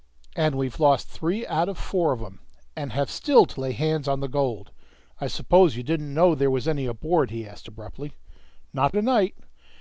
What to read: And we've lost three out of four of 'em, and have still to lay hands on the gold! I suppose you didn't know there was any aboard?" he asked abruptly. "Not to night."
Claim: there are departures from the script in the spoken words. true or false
false